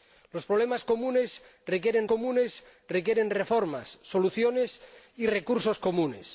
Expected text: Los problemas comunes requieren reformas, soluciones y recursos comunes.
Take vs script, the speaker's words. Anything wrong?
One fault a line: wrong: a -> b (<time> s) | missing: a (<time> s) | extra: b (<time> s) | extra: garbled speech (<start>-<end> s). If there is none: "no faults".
extra: comunes requieren (2.1 s)